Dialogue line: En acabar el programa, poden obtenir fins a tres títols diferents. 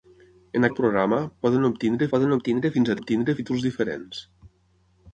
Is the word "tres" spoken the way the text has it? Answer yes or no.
no